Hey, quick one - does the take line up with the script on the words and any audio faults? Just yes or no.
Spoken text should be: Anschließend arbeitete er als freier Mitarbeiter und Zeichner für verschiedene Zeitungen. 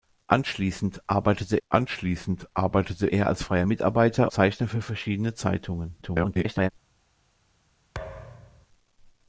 no